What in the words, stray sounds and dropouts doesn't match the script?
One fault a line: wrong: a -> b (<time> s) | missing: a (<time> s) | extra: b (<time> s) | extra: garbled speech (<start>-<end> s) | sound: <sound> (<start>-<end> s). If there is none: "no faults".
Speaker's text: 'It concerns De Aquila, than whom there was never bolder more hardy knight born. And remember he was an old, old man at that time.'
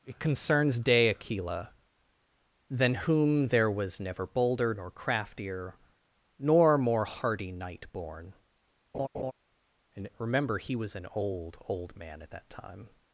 extra: nor craftier nor (4.7 s)
sound: laugh (8.9-9.3 s)